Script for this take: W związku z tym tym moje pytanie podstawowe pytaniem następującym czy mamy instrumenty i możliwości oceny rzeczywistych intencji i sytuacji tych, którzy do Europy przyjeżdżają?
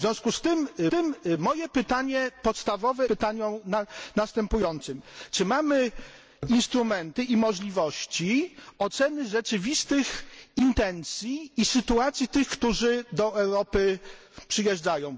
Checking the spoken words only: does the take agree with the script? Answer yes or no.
yes